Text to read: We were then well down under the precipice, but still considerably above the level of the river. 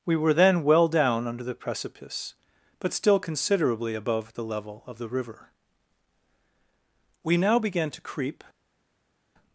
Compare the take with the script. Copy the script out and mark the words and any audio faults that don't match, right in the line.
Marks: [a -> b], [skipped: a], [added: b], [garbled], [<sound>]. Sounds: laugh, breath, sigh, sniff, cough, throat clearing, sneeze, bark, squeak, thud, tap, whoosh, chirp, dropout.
We were then well down under the precipice, but still considerably above the level of the river. [added: We now began to creep]